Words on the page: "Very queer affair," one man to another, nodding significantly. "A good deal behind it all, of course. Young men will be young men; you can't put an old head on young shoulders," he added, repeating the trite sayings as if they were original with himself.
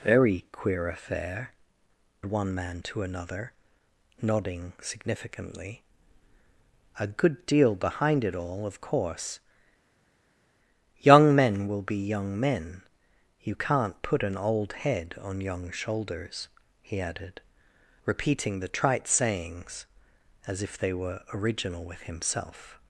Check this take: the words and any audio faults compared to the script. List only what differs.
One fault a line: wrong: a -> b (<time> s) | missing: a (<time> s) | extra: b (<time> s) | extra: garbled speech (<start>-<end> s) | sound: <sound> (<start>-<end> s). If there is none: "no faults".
no faults